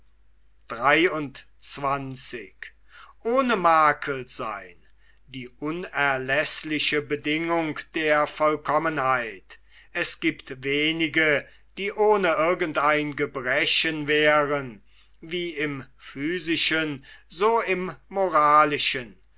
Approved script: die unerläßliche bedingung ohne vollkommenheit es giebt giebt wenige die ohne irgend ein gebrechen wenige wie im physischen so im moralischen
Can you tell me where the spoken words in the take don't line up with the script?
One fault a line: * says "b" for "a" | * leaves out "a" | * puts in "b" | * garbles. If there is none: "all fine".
* says "der" for "ohne"
* leaves out "giebt"
* says "wären" for "wenige"